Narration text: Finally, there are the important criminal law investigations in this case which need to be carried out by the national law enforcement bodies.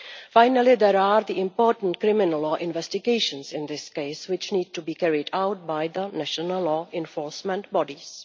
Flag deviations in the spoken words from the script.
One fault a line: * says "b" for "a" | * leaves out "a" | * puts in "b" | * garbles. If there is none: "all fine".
all fine